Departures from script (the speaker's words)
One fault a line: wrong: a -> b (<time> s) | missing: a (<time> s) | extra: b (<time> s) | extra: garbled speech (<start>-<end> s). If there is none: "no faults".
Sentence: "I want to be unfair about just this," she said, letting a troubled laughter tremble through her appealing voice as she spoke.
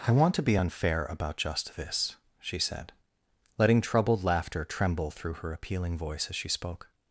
missing: a (3.8 s)